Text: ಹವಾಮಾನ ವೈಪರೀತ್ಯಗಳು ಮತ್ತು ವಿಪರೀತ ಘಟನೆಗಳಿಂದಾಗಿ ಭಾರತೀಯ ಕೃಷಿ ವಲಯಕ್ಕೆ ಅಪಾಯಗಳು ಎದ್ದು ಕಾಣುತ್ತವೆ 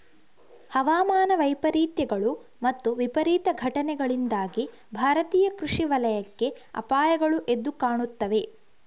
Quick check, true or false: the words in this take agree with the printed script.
true